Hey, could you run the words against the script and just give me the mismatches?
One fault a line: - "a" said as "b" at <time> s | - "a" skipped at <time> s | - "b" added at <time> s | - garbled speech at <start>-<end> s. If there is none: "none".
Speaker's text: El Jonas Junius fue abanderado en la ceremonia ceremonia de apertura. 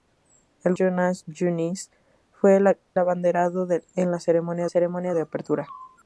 none